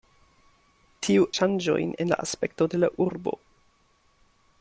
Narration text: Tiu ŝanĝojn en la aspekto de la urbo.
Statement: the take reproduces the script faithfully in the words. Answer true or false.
true